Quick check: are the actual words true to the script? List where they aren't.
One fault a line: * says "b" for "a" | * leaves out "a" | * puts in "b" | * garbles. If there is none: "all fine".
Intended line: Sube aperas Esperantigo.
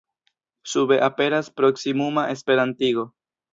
* puts in "proksimuma"